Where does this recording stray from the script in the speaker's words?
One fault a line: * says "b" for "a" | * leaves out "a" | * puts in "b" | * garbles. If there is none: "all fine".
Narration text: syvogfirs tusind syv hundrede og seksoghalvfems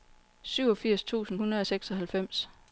* leaves out "syv"